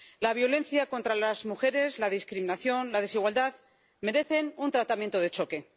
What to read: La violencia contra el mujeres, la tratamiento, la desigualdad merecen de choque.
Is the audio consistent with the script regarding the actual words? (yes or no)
no